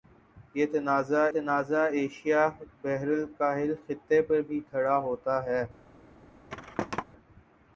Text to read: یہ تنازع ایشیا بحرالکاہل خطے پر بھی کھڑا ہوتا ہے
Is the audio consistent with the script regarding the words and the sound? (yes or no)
no